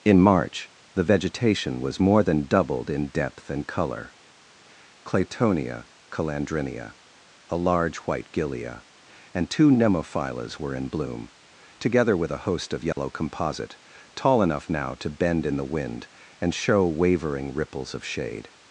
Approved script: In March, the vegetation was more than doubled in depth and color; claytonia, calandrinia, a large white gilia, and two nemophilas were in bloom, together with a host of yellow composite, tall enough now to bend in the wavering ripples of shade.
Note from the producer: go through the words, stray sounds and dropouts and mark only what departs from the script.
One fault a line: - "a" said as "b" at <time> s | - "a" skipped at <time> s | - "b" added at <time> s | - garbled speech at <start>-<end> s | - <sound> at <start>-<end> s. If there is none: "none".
- dropout at 12.9-13.0 s
- "wind and show" added at 15.6 s